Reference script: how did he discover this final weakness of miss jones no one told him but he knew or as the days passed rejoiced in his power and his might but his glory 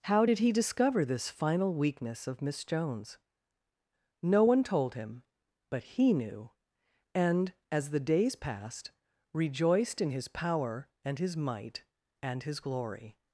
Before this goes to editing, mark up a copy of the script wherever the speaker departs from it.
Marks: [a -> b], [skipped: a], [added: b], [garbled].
how did he discover this final weakness of miss jones no one told him but he knew [or -> and] as the days passed rejoiced in his power and his might [but -> and] his glory